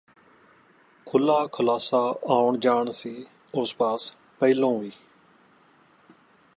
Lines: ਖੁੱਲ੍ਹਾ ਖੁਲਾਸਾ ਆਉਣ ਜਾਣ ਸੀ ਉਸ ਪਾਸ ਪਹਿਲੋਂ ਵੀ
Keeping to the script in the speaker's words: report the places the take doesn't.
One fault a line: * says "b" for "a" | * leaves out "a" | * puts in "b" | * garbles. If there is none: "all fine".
all fine